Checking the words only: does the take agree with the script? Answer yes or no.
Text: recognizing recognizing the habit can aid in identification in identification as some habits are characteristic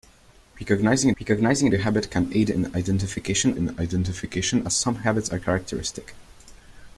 yes